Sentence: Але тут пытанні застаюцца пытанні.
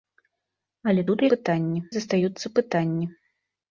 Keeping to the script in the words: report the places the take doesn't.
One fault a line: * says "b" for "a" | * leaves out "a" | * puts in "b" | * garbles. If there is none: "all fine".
all fine